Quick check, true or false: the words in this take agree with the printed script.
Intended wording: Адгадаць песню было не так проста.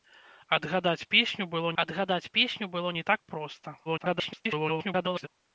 false